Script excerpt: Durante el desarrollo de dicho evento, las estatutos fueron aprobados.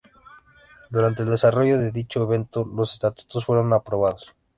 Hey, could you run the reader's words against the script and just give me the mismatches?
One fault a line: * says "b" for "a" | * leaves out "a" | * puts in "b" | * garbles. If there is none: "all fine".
* says "los" for "las"